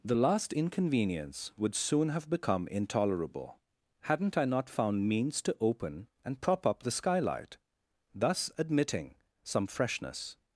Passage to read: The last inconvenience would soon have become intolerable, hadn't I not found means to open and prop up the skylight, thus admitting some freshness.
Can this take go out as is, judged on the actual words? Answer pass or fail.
pass